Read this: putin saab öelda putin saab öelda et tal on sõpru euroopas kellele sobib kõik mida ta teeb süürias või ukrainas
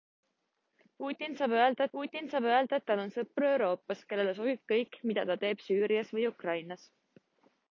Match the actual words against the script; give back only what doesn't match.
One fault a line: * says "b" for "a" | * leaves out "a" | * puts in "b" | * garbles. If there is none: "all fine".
all fine